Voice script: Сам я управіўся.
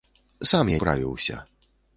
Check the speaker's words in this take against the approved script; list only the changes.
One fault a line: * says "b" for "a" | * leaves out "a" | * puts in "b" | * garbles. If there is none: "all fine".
all fine